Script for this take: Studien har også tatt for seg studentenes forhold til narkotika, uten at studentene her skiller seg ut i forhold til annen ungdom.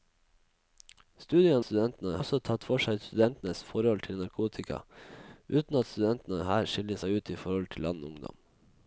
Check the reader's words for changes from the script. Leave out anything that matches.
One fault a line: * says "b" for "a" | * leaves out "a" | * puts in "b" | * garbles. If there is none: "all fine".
* says "studentene" for "har"